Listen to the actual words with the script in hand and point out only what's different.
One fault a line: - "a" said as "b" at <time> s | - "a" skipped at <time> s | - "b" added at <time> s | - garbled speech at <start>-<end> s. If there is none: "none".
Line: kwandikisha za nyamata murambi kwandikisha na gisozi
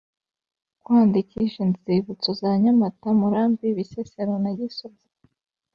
- "inzibutso" added at 1.7 s
- "kwandikisha" said as "bisesero" at 3.8 s